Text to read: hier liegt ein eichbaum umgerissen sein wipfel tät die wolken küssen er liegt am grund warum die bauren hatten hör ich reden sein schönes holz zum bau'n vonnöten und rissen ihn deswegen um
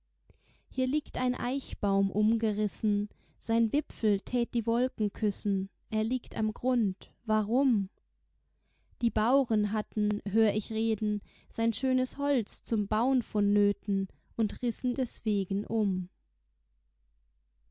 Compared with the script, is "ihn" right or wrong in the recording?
wrong